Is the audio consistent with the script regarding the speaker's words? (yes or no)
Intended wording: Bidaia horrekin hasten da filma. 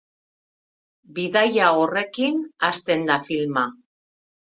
yes